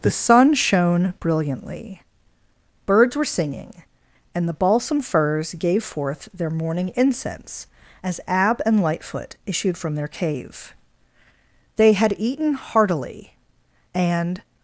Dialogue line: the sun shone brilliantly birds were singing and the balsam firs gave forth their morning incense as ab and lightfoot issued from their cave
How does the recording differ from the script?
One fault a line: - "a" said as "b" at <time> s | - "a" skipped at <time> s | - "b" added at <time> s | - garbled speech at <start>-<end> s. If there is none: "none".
- "they had eaten heartily and" added at 11.8 s